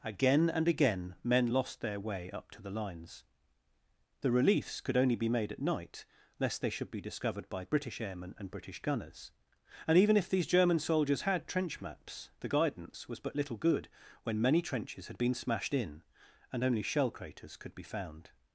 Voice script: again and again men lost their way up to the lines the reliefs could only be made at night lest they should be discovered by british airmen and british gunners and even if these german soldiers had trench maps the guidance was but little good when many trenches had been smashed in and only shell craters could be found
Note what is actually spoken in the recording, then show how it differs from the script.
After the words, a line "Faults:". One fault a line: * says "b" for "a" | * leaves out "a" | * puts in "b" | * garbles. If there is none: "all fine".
again and again men lost their way up to the lines the reliefs could only be made at night lest they should be discovered by british airmen and british gunners and even if these german soldiers had trench maps the guidance was but little good when many trenches had been smashed in and only shell craters could be found
Faults:
all fine